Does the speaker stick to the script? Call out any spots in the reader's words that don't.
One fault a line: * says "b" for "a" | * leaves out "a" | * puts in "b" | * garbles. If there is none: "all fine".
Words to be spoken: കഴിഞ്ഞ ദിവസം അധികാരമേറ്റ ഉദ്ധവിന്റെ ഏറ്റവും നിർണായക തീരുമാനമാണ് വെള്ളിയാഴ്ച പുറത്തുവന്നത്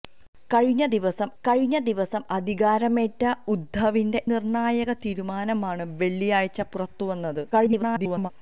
* puts in "കഴിഞ്ഞ ദിവസം"
* leaves out "ഏറ്റവും"
* garbles